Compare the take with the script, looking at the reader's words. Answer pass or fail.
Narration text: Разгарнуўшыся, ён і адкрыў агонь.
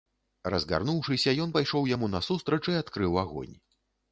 fail